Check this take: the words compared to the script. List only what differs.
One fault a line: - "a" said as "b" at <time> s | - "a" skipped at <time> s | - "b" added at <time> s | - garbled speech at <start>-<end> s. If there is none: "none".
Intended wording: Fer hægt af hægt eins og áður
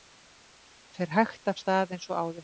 - "hægt" said as "stað" at 1.6 s